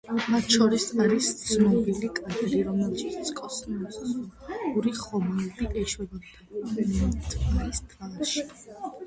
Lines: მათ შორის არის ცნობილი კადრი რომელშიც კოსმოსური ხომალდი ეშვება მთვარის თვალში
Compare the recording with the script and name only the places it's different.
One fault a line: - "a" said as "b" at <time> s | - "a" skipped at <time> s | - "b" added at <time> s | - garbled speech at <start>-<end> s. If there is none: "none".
none